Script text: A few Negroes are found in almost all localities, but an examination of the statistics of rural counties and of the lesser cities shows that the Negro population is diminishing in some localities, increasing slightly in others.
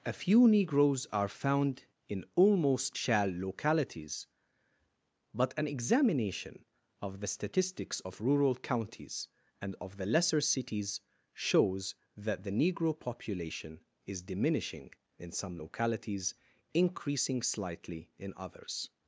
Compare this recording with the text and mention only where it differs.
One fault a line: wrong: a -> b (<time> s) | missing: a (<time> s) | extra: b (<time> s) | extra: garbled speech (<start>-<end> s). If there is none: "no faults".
wrong: all -> shall (2.9 s)